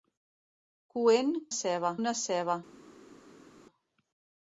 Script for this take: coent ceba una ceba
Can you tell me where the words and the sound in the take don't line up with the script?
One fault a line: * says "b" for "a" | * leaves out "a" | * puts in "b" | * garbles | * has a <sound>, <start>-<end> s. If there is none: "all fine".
all fine